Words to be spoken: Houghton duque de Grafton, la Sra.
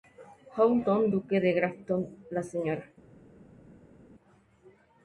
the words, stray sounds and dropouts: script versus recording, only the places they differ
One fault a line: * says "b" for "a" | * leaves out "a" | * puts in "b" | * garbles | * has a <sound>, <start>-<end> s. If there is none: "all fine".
all fine